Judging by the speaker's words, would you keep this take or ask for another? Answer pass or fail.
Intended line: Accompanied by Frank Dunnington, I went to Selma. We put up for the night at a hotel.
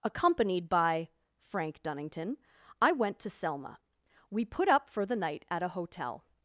pass